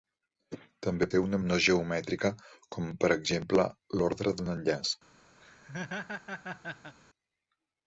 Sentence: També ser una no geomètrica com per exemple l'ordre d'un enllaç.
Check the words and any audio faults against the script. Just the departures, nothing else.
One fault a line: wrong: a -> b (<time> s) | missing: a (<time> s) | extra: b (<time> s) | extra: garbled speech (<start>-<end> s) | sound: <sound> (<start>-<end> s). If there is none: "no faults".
sound: laugh (5.4-7.0 s)